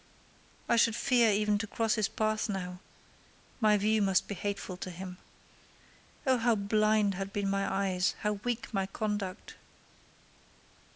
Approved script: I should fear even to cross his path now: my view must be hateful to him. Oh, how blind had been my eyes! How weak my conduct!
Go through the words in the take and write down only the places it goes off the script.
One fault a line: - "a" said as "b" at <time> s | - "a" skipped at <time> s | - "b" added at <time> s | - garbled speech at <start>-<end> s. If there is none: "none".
none